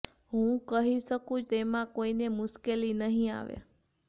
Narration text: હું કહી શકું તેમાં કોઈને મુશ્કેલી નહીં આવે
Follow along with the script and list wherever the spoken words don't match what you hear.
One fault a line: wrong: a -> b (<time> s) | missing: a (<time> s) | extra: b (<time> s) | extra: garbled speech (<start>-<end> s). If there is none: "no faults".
no faults